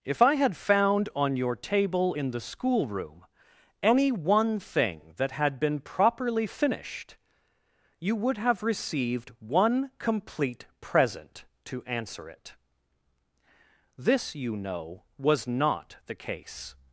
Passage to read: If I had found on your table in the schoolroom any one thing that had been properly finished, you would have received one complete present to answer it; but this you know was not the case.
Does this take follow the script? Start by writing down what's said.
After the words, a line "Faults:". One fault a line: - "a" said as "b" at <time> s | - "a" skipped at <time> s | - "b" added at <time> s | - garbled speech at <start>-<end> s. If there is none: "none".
If I had found on your table in the schoolroom any one thing that had been properly finished, you would have received one complete present to answer it; this you know was not the case.
Faults:
- "but" skipped at 12.5 s